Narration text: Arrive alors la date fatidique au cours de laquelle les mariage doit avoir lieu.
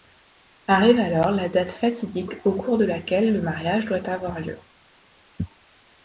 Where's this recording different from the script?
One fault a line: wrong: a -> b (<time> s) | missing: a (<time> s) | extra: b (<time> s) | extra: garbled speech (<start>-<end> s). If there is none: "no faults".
wrong: les -> le (3.3 s)